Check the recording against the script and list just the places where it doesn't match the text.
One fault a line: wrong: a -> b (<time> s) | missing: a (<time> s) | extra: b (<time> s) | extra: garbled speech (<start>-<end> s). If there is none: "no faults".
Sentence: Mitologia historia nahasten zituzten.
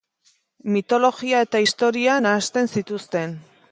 extra: eta (1.5 s)